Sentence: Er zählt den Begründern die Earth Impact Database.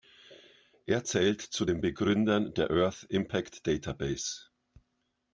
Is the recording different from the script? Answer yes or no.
yes